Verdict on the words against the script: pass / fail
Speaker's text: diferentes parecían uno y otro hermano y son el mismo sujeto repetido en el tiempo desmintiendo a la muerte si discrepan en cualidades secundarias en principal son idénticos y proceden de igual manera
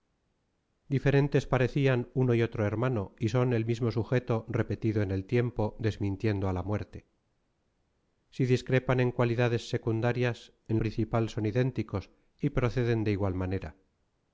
pass